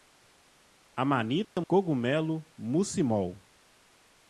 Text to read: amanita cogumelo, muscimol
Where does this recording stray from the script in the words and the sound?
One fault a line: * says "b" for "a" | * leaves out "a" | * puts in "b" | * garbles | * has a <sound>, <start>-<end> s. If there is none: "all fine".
* has a dropout, 1.4-1.6 s